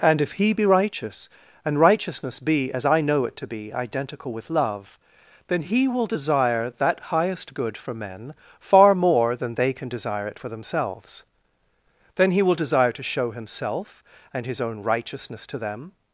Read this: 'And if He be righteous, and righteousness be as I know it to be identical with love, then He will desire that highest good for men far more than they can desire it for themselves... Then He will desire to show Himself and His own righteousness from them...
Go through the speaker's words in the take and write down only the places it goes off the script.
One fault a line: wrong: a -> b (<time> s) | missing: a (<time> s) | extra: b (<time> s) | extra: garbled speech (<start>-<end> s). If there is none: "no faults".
wrong: from -> to (15.5 s)